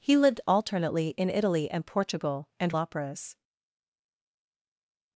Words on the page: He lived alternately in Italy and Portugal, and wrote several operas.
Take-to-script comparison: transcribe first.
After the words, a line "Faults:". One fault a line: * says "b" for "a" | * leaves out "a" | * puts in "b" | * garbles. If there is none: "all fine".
He lived alternately in Italy and Portugal, and operas.
Faults:
* leaves out "wrote several"